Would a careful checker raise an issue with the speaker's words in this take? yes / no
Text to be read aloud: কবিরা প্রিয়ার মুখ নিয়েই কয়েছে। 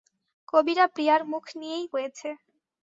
no